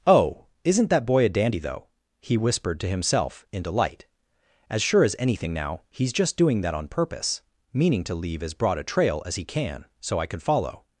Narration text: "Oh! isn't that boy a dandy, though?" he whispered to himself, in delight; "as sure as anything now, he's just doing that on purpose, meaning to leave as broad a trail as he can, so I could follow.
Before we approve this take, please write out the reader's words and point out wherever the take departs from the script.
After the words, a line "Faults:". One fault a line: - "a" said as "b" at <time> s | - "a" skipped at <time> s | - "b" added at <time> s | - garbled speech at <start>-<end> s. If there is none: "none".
"Oh! isn't that boy a dandy, though?" he whispered to himself, in delight; "as sure as anything now, he's just doing that on purpose, meaning to leave as broad a trail as he can, so I could follow.
Faults:
none